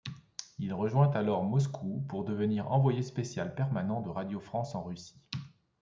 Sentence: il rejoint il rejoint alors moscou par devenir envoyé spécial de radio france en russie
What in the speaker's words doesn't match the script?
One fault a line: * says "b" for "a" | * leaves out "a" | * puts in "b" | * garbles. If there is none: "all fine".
* leaves out "il rejoint"
* says "pour" for "par"
* puts in "permanent"